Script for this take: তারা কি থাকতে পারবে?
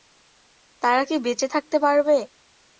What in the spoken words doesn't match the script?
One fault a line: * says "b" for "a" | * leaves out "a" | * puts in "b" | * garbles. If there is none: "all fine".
* puts in "বেঁচে"